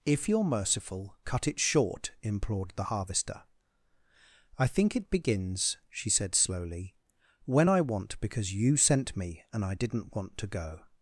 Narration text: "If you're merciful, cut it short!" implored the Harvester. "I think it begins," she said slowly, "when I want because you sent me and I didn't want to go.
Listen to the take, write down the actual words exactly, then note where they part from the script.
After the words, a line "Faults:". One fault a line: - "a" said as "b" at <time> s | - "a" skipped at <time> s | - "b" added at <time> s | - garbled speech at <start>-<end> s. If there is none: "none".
"If you're merciful, cut it short!" implored the Harvester. "I think it begins," she said slowly, "when I want because you sent me and I didn't want to go.
Faults:
none